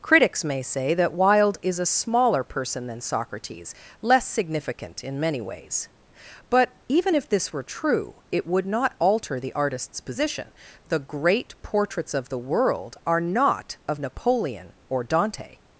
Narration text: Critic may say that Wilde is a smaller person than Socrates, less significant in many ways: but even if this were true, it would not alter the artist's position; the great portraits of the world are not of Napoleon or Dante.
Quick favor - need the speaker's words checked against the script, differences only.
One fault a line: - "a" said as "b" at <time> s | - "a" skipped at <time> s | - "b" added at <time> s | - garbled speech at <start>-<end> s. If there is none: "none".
- "Critic" said as "Critics" at 0.0 s